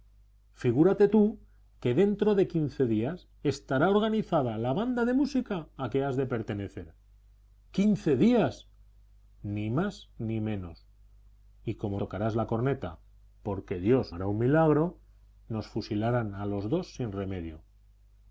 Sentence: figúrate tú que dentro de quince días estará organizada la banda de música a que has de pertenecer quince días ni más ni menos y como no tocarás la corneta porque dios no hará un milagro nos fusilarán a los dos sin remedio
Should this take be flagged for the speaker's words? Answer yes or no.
yes